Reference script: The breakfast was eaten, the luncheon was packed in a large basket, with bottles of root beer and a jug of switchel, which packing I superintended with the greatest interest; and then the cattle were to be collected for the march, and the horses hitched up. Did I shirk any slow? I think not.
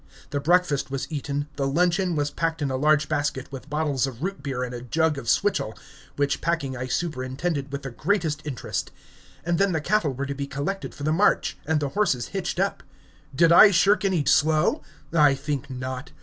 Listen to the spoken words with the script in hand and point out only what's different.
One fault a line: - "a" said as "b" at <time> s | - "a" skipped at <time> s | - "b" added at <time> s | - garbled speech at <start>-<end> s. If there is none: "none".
none